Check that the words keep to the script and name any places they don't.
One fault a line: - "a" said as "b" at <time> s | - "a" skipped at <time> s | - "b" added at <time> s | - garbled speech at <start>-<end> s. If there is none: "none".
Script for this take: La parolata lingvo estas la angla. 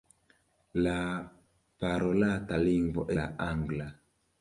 - "estas" skipped at 3.1 s